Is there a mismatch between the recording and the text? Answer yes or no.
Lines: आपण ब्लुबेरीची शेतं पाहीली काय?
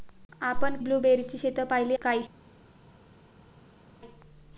no